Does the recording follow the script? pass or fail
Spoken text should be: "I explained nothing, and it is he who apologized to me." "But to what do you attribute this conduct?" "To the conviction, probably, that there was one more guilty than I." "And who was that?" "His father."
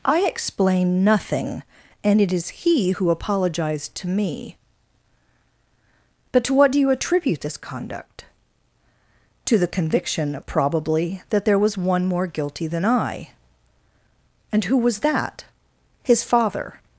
fail